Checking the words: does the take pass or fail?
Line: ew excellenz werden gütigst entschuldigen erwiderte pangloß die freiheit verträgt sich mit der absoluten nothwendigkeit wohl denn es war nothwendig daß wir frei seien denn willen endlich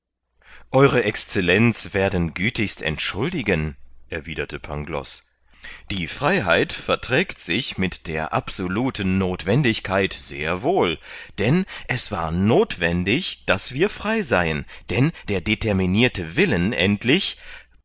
fail